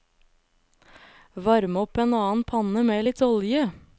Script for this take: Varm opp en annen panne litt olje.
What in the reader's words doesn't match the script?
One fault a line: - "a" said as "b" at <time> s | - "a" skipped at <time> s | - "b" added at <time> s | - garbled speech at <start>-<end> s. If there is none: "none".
- "med" added at 2.8 s